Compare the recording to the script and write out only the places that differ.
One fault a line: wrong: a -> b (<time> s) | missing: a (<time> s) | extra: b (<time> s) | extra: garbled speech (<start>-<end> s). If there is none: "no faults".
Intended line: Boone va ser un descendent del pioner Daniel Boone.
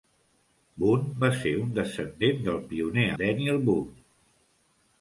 no faults